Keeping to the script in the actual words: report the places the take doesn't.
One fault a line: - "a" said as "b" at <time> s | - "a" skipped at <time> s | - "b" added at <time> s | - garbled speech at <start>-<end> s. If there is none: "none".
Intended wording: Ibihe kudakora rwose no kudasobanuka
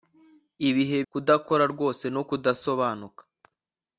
none